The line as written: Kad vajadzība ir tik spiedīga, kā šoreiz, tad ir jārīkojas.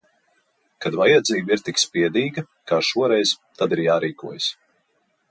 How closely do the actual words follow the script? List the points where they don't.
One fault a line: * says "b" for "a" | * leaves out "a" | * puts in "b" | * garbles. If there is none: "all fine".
all fine